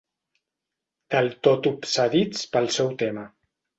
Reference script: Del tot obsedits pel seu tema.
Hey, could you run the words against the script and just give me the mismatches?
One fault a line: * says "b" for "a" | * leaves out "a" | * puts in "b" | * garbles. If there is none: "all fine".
all fine